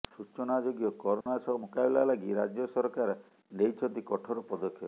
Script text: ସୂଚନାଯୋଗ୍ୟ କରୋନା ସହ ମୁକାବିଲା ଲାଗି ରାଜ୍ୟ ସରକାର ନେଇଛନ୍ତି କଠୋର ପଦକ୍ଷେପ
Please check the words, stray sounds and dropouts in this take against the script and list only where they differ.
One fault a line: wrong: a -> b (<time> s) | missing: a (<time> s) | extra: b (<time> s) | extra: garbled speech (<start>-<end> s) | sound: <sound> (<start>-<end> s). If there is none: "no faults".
sound: dropout (1.2-1.3 s)